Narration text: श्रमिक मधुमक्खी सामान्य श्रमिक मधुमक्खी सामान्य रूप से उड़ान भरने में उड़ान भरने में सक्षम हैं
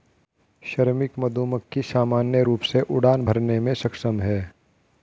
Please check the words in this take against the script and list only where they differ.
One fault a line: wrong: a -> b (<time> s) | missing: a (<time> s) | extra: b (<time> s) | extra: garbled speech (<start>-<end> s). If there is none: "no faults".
missing: श्रमिक मधुमक्खी सामान्य (2.4 s)
missing: उड़ान भरने में (3.7 s)